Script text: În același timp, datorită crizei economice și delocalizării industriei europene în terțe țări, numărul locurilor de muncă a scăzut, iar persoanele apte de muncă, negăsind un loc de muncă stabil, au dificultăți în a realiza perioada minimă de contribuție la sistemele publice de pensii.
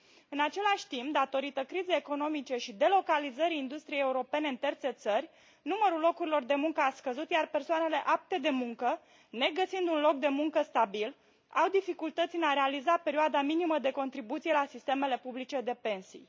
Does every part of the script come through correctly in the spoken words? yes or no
yes